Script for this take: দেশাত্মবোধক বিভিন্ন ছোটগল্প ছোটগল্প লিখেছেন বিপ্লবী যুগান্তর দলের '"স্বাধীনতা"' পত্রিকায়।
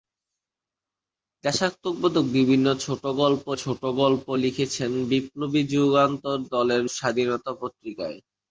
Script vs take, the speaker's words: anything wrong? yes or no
no